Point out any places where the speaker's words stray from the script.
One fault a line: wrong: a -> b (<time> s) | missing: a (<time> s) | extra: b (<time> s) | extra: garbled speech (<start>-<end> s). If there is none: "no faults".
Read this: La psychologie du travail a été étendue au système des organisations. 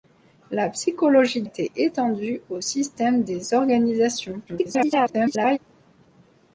missing: du travail a (1.4 s)
extra: garbled speech (4.5-5.6 s)